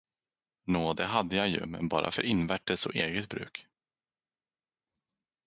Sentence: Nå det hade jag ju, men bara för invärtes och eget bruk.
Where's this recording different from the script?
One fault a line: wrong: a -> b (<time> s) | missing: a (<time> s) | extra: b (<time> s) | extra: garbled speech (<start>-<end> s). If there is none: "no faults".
no faults